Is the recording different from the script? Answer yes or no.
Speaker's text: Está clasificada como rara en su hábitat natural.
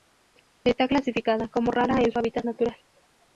no